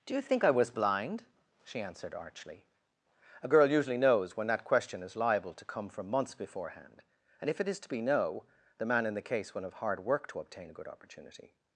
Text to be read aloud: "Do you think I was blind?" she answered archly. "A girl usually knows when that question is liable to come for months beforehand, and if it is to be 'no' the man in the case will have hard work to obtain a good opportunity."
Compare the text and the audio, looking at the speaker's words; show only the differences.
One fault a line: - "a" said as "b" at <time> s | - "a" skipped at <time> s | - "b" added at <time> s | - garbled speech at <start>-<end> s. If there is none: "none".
- "for" said as "from" at 5.9 s